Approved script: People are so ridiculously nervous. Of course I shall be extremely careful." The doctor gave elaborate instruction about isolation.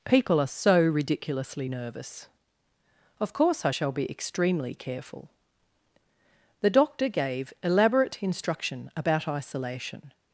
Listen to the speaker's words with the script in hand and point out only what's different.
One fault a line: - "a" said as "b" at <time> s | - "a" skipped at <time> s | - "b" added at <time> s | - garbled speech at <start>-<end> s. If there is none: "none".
none